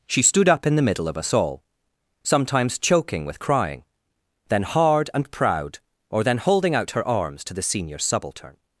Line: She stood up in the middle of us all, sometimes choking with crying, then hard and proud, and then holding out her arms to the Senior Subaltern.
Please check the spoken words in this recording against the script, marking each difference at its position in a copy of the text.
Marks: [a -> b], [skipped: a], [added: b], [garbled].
She stood up in the middle of us all, sometimes choking with crying, then hard and proud, [and -> or] then holding out her arms to the Senior Subaltern.